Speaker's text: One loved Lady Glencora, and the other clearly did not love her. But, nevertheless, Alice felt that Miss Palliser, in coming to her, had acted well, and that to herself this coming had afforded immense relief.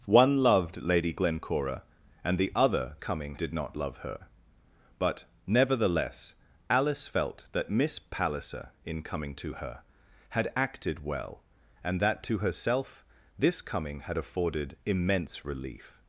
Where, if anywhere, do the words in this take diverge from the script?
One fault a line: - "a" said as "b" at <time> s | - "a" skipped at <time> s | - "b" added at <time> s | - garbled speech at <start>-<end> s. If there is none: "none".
- "clearly" said as "coming" at 3.0 s